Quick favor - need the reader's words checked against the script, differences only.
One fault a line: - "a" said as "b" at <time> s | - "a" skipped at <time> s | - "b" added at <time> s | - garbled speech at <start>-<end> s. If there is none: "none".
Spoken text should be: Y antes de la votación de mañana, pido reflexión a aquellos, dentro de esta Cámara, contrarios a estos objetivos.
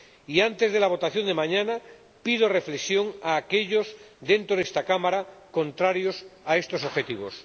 none